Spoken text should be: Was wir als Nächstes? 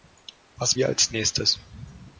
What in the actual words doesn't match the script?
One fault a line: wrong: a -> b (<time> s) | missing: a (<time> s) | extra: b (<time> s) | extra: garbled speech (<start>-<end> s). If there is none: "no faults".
no faults